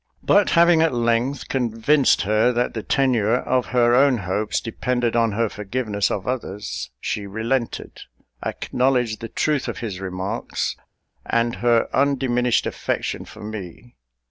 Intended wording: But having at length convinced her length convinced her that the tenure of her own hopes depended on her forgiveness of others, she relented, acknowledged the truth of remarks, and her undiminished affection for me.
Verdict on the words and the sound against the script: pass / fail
fail